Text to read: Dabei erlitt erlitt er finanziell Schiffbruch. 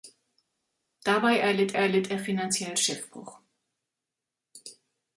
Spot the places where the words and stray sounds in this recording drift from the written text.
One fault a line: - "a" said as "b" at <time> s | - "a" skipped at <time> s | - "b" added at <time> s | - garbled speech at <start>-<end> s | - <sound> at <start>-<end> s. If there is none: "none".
none